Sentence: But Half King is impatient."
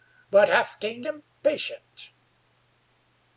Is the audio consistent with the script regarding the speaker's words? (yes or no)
no